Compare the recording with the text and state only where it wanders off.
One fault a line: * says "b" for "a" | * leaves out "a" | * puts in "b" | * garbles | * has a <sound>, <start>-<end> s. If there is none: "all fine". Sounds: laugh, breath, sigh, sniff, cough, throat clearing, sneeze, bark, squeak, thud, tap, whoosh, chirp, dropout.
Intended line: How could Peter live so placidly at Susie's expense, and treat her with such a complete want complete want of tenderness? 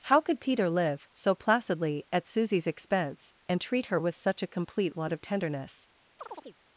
* leaves out "complete want"
* has a chirp, 6.2-6.6 s